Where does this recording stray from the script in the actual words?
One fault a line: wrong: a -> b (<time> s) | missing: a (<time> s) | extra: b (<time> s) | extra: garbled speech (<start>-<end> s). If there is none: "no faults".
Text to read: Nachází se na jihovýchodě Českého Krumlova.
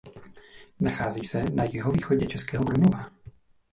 no faults